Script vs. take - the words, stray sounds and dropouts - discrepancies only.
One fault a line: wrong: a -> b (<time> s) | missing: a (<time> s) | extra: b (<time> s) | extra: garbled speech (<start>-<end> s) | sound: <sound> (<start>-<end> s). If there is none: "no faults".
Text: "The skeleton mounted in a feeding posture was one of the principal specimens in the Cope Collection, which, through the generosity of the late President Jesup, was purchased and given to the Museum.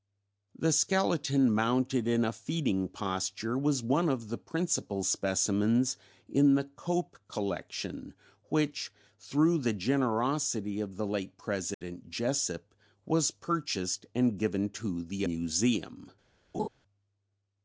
sound: dropout (11.7-11.8 s)
sound: laugh (16.5-16.7 s)